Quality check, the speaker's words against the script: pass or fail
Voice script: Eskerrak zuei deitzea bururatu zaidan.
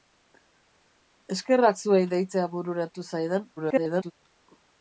fail